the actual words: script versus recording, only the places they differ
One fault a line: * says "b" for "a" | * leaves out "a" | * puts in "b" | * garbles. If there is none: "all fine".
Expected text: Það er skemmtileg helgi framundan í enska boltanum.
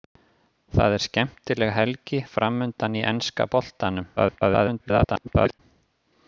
* garbles